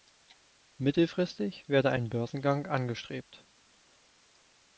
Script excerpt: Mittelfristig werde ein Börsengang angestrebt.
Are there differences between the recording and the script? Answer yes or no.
no